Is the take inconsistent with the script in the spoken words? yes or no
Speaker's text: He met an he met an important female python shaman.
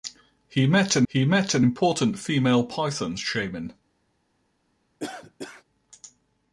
no